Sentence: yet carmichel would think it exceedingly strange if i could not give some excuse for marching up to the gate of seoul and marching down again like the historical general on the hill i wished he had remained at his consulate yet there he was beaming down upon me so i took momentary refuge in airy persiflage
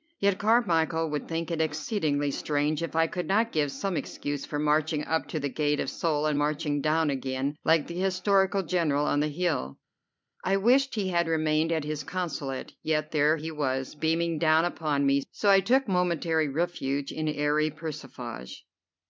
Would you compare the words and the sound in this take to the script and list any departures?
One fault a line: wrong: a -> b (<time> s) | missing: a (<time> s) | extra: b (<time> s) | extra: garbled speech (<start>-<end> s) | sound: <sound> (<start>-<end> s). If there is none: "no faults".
no faults